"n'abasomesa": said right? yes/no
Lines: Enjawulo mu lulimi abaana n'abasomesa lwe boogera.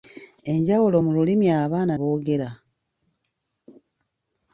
no